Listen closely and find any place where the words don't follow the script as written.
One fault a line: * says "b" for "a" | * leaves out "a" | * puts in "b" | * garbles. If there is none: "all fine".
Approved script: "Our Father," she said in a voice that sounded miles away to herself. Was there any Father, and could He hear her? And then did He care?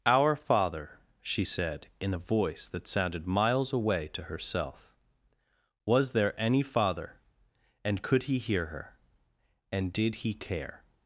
* leaves out "then"